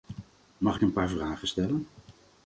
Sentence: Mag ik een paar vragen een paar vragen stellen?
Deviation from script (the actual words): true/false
true